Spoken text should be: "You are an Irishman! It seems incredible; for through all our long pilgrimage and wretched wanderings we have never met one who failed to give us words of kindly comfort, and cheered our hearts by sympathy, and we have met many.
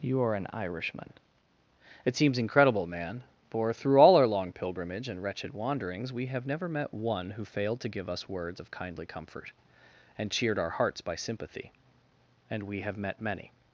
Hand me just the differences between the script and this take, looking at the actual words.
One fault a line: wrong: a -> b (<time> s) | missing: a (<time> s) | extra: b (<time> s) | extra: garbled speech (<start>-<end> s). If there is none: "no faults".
extra: man (2.9 s)